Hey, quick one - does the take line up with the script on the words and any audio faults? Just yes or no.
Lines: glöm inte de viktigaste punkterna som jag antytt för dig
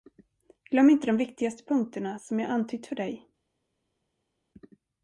yes